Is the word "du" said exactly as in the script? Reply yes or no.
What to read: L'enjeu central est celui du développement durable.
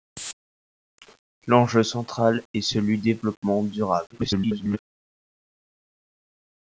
no